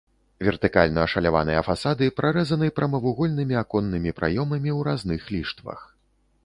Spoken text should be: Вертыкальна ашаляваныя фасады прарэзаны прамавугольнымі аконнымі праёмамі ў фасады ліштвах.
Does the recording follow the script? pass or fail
fail